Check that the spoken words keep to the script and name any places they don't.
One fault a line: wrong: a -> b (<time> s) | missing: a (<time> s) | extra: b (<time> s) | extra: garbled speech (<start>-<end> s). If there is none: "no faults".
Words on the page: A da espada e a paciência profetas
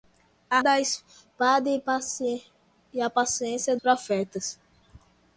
no faults